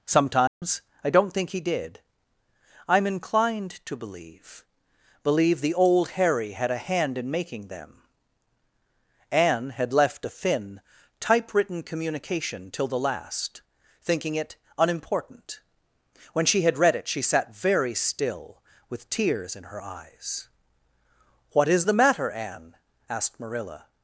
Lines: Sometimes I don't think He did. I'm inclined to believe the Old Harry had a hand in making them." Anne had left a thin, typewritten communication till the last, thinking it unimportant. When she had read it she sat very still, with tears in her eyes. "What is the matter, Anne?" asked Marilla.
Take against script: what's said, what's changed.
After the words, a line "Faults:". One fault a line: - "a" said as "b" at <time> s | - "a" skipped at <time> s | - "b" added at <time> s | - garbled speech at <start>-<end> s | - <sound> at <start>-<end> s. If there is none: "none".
Sometimes I don't think He did. I'm inclined to believe believe the Old Harry had a hand in making them." Anne had left a thin, typewritten communication till the last, thinking it unimportant. When she had read it she sat very still, with tears in her eyes. "What is the matter, Anne?" asked Marilla.
Faults:
- dropout at 0.5-0.6 s
- "believe" added at 5.2 s